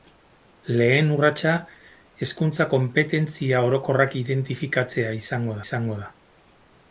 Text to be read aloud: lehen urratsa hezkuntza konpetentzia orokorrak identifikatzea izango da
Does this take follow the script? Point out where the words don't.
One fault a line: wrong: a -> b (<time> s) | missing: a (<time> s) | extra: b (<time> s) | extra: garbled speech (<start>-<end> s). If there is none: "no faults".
extra: izango (5.6 s)